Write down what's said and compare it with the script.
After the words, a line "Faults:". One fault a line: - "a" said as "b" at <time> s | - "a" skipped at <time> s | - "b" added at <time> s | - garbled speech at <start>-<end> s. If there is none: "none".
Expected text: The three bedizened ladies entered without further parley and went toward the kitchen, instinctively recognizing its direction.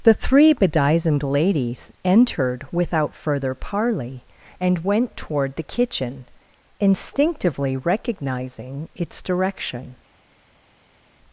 The three bedizened ladies entered without further parley and went toward the kitchen, instinctively recognizing its direction.
Faults:
none